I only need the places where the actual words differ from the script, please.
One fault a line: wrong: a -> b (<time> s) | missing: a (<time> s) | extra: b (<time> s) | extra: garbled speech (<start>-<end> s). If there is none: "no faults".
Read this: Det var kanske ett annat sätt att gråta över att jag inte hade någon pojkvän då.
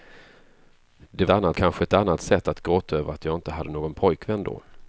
wrong: var -> annat (1.3 s)